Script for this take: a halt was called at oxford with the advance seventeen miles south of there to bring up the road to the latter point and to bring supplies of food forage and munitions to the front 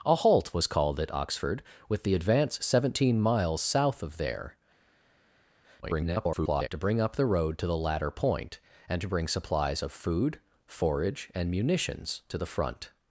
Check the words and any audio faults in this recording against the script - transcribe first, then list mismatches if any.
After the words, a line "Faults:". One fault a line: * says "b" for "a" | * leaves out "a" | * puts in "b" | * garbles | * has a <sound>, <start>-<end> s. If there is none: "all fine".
a halt was called at oxford with the advance seventeen miles south of there [garbled] to bring up the road to the latter point and to bring supplies of food forage and munitions to the front
Faults:
* garbles